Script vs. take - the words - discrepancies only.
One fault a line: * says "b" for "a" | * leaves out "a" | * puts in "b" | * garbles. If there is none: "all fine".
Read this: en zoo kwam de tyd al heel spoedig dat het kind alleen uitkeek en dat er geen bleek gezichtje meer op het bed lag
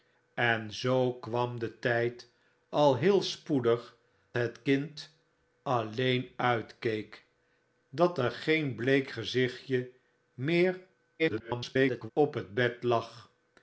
* leaves out "dat"
* leaves out "en"
* garbles